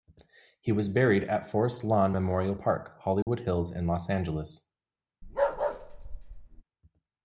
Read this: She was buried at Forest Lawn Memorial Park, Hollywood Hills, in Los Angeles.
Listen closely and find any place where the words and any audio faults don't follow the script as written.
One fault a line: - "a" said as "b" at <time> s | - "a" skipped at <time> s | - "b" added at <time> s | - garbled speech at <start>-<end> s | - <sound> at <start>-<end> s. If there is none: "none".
- "She" said as "He" at 0.6 s
- dropout at 3.2-3.3 s
- bark at 5.2-6.6 s